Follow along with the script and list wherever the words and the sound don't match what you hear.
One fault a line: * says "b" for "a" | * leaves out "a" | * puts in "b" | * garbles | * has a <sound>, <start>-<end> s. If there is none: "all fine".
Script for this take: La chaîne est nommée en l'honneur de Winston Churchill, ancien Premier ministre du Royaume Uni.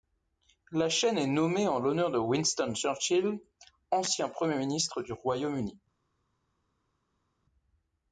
all fine